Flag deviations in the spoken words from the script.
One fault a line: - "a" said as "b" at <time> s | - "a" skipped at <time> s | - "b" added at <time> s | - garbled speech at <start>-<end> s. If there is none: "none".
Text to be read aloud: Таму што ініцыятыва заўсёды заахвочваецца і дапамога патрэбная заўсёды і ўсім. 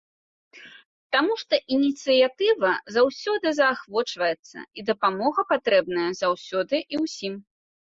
none